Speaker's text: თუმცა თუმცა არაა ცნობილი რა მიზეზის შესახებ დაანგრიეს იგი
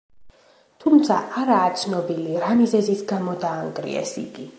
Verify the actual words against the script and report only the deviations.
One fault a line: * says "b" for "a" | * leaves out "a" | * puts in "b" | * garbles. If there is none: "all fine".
* leaves out "თუმცა"
* says "გამო" for "შესახებ"